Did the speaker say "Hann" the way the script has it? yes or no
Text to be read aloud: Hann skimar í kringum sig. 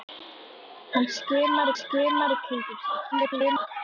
yes